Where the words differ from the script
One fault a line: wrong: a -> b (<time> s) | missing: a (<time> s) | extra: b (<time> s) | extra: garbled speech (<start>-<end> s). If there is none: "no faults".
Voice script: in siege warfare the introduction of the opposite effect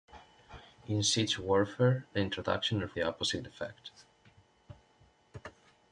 no faults